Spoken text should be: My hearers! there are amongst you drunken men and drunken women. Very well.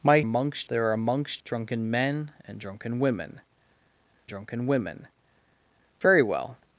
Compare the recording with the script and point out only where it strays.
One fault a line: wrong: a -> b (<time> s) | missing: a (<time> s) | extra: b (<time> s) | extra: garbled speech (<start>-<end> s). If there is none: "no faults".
wrong: hearers -> amongst (0.2 s)
missing: you (1.4 s)
extra: drunken women (4.3 s)